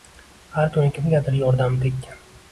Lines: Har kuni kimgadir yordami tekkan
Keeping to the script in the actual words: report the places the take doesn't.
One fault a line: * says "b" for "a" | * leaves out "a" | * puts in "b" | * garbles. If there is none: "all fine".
all fine